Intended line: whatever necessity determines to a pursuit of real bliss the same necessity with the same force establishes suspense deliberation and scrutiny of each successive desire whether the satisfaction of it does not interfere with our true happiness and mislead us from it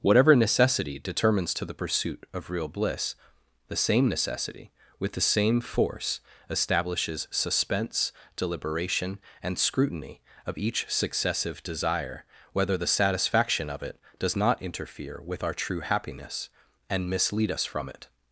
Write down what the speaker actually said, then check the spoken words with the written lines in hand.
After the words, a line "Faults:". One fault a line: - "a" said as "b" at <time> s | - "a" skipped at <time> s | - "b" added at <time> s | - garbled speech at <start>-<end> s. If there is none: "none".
whatever necessity determines to the pursuit of real bliss the same necessity with the same force establishes suspense deliberation and scrutiny of each successive desire whether the satisfaction of it does not interfere with our true happiness and mislead us from it
Faults:
- "a" said as "the" at 1.6 s